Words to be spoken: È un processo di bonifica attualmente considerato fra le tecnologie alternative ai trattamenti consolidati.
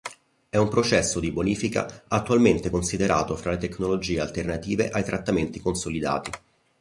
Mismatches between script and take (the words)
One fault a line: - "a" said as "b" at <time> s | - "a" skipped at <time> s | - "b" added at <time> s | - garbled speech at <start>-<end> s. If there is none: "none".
none